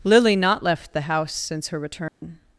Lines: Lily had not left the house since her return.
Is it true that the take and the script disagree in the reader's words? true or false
true